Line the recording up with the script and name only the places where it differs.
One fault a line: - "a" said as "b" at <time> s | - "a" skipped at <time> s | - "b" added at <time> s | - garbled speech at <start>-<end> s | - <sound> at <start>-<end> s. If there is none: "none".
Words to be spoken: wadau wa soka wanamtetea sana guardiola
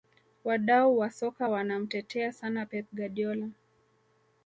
- "pep" added at 2.6 s